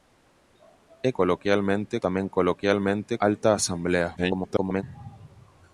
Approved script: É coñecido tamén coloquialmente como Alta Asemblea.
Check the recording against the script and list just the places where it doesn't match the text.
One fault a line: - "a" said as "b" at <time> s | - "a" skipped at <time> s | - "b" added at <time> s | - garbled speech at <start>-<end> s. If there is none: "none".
- "coñecido" said as "coloquialmente" at 1.2 s
- "como" skipped at 3.1 s
- garbled speech at 4.2-4.8 s